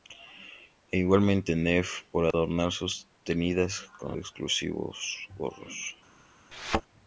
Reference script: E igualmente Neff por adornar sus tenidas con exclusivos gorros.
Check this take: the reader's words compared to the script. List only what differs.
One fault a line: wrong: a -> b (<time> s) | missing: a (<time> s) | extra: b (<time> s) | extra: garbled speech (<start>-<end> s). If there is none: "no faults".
no faults